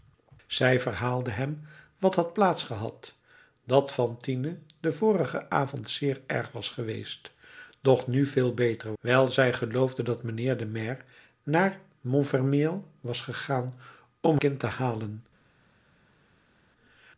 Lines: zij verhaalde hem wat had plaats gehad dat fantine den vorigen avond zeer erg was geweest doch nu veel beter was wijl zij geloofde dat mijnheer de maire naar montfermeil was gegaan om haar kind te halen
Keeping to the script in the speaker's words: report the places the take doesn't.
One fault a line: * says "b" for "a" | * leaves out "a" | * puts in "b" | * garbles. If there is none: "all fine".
* leaves out "was"
* leaves out "haar"